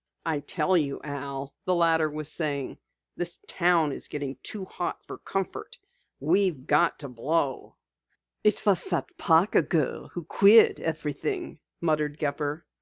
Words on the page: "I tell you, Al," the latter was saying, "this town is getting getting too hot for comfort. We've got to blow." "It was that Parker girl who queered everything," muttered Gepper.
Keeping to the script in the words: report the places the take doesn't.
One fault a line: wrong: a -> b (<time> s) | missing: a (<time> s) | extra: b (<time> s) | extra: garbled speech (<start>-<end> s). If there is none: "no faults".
missing: getting (4.3 s)